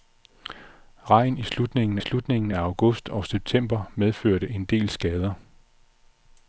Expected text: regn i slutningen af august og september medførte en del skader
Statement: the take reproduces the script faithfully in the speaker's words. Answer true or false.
false